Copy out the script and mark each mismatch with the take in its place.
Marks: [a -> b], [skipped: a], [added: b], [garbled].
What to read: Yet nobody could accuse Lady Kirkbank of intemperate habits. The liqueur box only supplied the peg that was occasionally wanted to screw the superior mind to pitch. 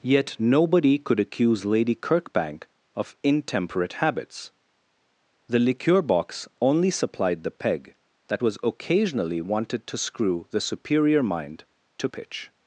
Yet nobody could accuse Lady Kirkbank of intemperate habits. The liqueur box only supplied the peg that was occasionally wanted to screw the superior mind to pitch.